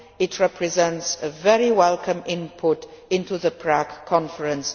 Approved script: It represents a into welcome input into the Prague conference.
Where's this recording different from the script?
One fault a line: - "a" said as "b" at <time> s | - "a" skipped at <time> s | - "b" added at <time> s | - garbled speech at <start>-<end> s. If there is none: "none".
- "into" said as "very" at 1.3 s